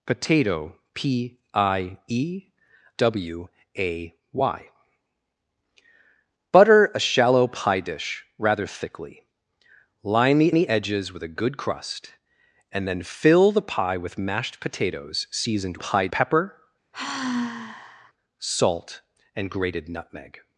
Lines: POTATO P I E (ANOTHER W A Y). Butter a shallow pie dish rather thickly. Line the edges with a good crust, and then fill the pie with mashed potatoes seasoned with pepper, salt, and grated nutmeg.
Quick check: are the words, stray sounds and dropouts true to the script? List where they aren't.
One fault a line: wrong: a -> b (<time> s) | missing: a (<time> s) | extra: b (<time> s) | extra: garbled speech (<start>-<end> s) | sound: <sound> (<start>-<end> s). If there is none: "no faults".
missing: ANOTHER (2.5 s)
extra: the (10.5 s)
wrong: with -> pie (15.8 s)
sound: sigh (16.9-18.1 s)